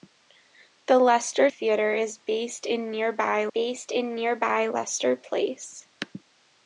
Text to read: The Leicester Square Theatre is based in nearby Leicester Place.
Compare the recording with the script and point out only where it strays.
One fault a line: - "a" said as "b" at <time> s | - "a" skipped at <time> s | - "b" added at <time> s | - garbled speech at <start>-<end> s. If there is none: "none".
- "Square" skipped at 1.5 s
- "based in nearby" added at 3.5 s